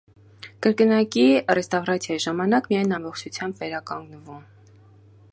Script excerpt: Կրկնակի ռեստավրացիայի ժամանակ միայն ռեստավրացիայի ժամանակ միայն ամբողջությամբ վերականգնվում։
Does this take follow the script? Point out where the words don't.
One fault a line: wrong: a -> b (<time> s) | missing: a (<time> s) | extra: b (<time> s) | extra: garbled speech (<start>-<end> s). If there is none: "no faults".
missing: ռեստավրացիայի ժամանակ միայն (2.9 s)